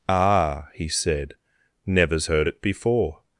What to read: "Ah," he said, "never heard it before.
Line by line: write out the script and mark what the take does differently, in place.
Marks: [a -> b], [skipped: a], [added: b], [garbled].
"Ah," he said, ["never -> nevers] heard it before.